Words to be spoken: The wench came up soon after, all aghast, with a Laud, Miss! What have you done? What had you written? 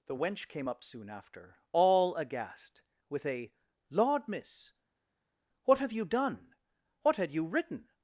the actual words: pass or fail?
pass